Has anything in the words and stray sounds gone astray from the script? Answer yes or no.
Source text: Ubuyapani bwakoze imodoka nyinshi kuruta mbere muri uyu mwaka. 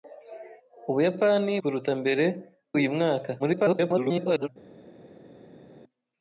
yes